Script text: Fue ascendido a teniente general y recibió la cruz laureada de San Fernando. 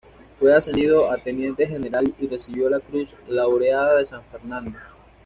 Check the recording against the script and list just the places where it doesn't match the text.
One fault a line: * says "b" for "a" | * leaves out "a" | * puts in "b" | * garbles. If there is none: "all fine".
all fine